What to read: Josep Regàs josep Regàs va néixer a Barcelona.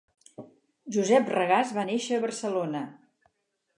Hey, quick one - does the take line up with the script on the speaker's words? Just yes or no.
no